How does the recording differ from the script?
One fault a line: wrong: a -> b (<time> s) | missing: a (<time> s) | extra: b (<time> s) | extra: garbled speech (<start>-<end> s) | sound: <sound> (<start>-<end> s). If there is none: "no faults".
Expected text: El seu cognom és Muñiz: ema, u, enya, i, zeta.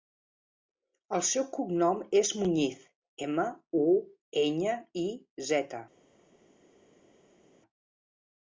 no faults